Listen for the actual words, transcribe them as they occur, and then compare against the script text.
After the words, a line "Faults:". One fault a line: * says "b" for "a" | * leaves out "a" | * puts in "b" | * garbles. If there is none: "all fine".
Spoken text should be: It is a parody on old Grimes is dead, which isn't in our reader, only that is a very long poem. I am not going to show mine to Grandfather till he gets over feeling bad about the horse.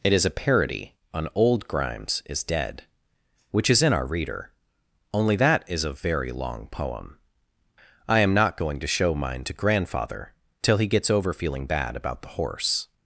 It is a parody on old Grimes is dead, which is in our reader, only that is a very long poem. I am not going to show mine to Grandfather till he gets over feeling bad about the horse.
Faults:
* says "is" for "isn't"